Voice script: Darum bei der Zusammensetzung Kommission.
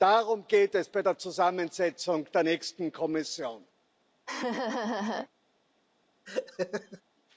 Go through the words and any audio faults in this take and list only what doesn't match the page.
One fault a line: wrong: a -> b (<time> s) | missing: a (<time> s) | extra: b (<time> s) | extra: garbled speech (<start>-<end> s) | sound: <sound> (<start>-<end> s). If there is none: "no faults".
extra: geht es (0.5 s)
extra: der nächsten (2.3 s)
sound: laugh (4.3-5.3 s)
sound: laugh (6.2-7.0 s)